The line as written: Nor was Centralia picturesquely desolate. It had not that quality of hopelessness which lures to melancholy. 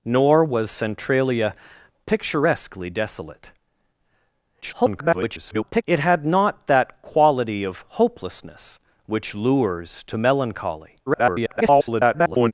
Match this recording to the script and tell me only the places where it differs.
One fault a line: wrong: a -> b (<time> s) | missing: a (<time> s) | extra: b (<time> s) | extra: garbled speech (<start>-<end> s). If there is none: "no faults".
extra: garbled speech (4.6-5.8 s)
extra: garbled speech (11.1-12.5 s)